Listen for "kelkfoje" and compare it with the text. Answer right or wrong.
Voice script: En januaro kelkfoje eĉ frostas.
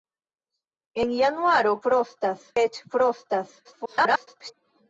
wrong